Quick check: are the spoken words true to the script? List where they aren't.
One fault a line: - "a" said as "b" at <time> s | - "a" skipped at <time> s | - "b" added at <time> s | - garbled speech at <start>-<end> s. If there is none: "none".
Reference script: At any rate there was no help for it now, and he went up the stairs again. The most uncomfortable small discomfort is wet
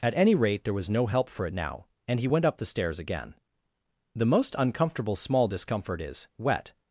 none